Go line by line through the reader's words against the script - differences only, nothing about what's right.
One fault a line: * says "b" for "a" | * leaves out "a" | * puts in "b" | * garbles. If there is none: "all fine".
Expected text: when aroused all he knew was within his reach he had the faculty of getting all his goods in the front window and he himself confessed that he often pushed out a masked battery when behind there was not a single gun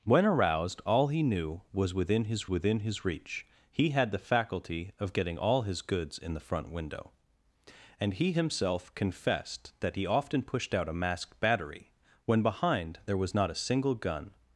* puts in "within his"